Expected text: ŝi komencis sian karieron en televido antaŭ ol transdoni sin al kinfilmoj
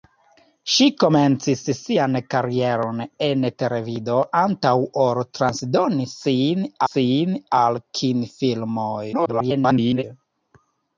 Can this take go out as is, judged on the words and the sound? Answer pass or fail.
fail